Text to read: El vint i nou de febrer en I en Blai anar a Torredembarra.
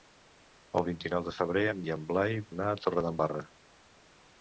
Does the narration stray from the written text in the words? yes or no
no